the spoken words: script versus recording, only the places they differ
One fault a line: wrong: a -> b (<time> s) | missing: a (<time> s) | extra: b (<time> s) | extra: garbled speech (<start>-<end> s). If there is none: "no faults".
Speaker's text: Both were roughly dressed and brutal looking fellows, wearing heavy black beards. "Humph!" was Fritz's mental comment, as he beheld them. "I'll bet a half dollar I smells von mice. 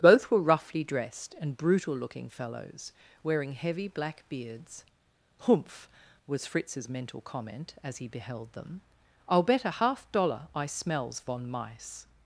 no faults